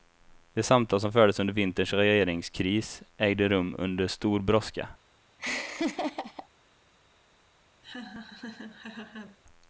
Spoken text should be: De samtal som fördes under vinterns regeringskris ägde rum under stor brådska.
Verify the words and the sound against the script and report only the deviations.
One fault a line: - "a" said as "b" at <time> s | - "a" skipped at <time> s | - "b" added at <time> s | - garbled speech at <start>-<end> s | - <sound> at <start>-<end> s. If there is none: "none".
- laugh at 5.4-6.5 s
- laugh at 7.8-9.4 s